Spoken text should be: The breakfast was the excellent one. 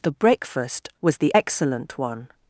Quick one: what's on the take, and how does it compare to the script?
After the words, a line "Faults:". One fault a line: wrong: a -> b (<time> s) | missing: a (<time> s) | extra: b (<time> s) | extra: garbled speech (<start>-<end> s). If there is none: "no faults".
The breakfast was the excellent one.
Faults:
no faults